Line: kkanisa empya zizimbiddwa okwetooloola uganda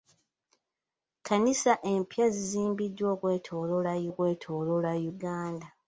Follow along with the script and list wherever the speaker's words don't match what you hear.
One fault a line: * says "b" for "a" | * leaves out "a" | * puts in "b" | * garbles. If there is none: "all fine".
* puts in "okwetooloola"